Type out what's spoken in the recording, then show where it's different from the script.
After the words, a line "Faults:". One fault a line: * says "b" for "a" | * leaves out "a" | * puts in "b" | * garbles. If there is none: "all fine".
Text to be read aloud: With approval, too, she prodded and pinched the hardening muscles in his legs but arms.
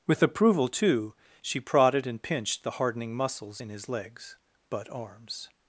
With approval, too, she prodded and pinched the hardening muscles in his legs but arms.
Faults:
all fine